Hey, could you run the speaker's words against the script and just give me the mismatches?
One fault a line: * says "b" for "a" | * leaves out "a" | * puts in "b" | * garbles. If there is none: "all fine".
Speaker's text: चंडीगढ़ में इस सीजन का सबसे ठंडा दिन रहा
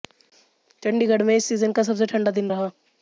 all fine